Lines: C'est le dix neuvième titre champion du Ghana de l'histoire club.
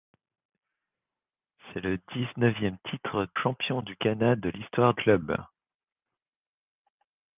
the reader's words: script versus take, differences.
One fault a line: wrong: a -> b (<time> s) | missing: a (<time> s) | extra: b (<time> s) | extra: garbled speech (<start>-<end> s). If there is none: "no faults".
no faults